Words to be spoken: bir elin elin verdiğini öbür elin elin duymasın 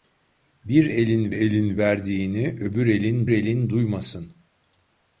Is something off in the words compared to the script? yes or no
no